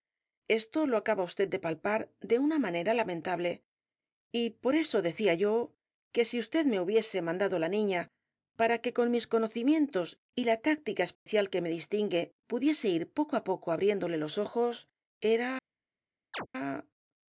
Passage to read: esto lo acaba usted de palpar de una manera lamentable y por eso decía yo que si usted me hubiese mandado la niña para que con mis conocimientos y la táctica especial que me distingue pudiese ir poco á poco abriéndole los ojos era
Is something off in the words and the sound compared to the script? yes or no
yes